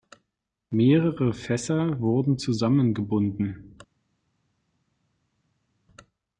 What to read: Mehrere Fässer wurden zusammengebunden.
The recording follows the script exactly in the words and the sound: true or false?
true